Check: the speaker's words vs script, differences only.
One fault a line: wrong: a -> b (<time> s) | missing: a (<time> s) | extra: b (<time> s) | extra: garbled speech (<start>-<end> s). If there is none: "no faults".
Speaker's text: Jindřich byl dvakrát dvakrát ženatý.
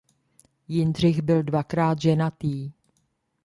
missing: dvakrát (2.0 s)